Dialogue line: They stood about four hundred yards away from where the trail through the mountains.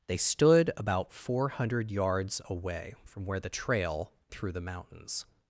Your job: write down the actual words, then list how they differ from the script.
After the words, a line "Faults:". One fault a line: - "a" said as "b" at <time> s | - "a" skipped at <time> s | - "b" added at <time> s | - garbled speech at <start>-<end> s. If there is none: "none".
They stood about four hundred yards away from where the trail through the mountains.
Faults:
none